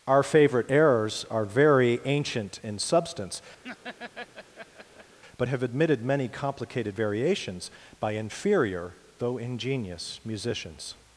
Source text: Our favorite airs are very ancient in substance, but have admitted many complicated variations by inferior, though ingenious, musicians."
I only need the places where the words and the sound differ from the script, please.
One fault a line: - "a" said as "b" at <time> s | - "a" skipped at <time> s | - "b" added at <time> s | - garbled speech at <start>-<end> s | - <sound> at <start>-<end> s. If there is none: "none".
- "airs" said as "errors" at 0.7 s
- laugh at 3.6-5.2 s